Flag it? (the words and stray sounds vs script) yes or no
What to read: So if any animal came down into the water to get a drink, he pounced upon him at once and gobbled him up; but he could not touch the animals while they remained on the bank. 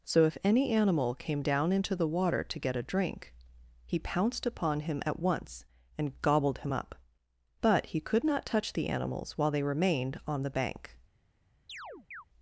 yes